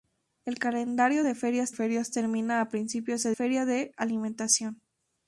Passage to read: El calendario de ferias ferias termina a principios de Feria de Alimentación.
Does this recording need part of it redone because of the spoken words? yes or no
no